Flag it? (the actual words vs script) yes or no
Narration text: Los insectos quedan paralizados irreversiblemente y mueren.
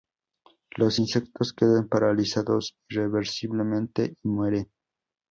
no